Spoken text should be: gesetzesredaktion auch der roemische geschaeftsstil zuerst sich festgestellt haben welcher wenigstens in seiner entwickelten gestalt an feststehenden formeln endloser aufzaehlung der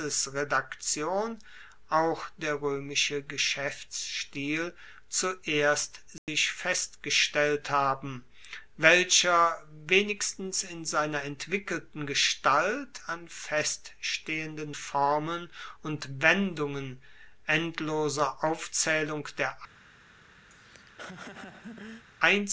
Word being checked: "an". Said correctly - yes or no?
yes